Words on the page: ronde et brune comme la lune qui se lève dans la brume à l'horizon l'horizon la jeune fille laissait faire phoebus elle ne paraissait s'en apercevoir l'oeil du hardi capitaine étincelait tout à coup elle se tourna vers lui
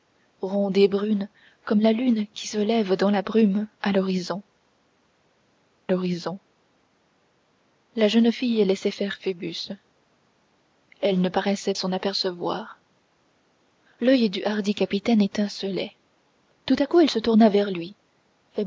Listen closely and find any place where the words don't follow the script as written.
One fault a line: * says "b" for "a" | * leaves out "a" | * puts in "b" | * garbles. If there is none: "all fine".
all fine